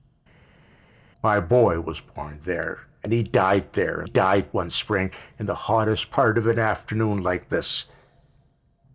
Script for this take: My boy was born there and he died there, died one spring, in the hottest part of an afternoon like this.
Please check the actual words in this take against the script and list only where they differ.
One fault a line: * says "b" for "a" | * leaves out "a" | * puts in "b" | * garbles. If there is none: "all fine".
all fine